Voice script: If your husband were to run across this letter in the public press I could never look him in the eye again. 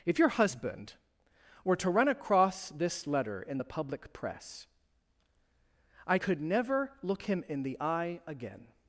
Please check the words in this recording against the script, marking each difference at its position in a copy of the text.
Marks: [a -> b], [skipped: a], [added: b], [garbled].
If your husband were to run across this letter in the public press I could never look him in the eye again.